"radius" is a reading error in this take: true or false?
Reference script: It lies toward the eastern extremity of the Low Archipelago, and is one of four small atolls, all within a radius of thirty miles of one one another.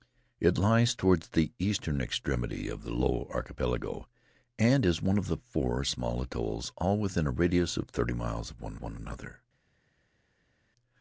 false